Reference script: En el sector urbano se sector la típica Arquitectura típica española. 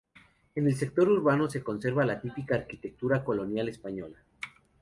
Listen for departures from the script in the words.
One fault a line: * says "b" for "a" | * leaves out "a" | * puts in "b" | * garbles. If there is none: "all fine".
* says "conserva" for "sector"
* says "colonial" for "típica"